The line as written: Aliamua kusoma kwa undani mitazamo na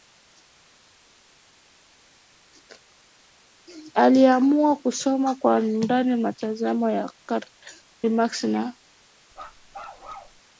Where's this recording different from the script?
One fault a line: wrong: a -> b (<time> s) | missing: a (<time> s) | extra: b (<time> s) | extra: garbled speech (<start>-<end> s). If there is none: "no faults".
extra: ya Karl Marx (6.9 s)